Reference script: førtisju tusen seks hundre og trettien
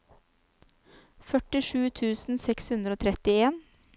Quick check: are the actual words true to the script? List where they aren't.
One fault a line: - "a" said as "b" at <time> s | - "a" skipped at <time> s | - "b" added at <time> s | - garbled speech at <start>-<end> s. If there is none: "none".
none